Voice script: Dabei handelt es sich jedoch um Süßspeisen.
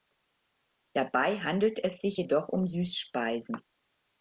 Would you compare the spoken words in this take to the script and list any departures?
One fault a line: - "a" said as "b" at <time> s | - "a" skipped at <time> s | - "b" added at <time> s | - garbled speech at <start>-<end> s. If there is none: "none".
none